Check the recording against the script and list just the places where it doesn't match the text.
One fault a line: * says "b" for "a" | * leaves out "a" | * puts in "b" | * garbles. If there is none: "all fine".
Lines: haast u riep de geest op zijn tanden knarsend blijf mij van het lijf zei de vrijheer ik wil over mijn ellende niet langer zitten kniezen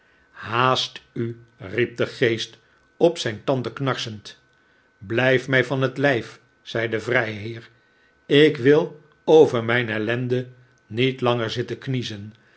all fine